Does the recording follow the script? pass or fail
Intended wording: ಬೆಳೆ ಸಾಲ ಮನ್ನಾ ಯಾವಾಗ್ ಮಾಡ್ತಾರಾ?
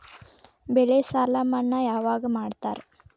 pass